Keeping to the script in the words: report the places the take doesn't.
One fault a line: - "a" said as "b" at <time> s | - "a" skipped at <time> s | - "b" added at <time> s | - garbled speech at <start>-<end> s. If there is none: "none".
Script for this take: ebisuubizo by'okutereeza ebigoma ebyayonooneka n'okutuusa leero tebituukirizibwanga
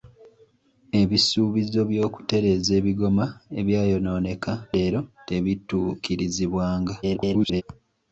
- "n'okutuusa" skipped at 4.5 s
- garbled speech at 7.0-7.6 s